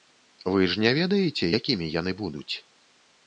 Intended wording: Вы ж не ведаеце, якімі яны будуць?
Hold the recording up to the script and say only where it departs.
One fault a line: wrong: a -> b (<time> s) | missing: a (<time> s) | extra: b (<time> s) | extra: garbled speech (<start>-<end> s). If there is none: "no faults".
no faults